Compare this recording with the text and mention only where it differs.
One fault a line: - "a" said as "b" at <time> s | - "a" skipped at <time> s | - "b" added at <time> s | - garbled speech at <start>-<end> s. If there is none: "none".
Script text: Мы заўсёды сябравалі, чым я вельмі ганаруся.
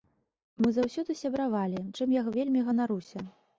none